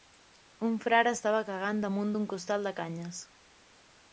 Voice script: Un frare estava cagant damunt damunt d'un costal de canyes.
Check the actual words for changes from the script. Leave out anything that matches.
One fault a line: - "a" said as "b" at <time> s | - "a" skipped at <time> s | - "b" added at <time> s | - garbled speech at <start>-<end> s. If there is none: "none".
- "damunt" skipped at 2.1 s